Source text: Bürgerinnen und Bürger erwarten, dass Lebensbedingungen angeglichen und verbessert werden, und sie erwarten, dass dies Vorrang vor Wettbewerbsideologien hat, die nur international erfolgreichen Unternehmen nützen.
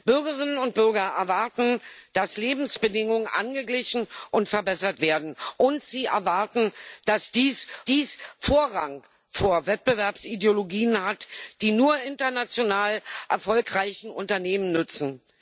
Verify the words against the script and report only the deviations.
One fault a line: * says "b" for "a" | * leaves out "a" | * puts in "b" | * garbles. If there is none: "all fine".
* puts in "dies"